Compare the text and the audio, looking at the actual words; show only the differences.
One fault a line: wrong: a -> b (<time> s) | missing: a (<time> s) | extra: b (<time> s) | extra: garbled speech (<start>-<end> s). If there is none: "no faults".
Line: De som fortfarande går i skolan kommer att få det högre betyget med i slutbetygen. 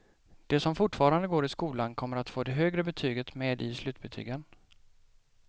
no faults